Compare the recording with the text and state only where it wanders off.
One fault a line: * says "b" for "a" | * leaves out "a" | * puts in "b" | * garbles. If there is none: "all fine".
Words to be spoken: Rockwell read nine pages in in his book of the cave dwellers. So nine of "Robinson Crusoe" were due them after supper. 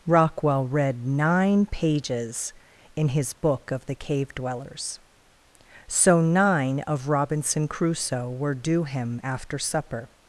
* leaves out "in"
* says "him" for "them"